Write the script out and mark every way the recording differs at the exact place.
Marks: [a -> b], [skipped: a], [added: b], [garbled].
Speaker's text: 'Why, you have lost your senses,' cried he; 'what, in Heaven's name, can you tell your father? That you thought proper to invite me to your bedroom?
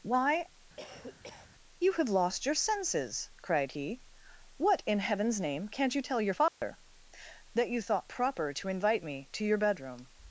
'Why, you have lost your senses,' cried he; 'what, in Heaven's name, [can -> can't] you tell your father? That you thought proper to invite me to your bedroom?